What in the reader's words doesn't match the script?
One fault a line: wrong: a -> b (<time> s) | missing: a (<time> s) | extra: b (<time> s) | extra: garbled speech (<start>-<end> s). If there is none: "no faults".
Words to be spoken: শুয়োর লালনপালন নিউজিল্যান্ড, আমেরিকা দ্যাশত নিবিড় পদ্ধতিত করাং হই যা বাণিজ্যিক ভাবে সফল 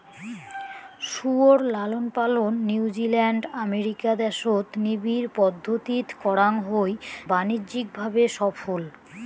missing: যা (6.9 s)